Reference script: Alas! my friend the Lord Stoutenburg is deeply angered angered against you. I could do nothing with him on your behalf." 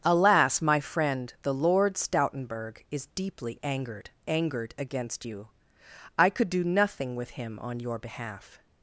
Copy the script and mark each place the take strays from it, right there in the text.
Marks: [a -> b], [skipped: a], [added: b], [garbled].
Alas! my friend the Lord Stoutenburg is deeply angered angered against you. I could do nothing with him on your behalf."